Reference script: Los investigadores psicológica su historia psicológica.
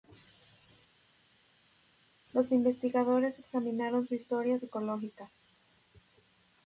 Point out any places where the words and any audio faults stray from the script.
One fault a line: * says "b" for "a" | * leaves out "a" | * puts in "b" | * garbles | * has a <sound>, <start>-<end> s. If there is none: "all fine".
* says "examinaron" for "psicológica"